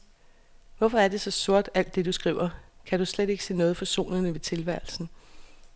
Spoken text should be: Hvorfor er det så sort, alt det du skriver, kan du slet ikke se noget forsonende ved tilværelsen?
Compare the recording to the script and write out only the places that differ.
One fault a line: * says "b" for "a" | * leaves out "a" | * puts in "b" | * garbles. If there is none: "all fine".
all fine